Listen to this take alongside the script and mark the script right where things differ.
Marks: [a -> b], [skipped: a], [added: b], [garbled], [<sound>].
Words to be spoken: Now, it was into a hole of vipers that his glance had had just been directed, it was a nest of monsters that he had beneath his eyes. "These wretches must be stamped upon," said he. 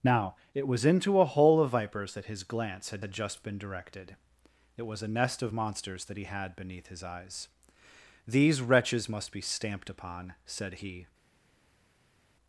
Now, it was into a hole of vipers that his glance had had just been directed, it was a nest of monsters that he had beneath his eyes. "These wretches must be stamped upon," said he.